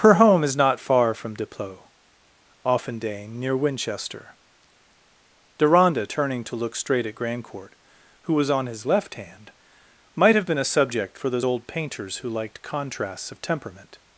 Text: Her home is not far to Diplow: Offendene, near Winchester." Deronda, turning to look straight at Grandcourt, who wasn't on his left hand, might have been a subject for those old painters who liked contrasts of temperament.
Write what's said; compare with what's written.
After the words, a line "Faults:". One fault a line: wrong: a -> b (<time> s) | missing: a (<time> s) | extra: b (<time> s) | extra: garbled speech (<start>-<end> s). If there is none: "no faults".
Her home is not far from Diplow: Offendene, near Winchester." Deronda, turning to look straight at Grandcourt, who was on his left hand, might have been a subject for those old painters who liked contrasts of temperament.
Faults:
wrong: to -> from (1.1 s)
wrong: wasn't -> was (8.3 s)